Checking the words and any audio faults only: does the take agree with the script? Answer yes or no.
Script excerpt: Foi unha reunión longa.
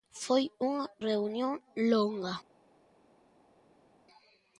yes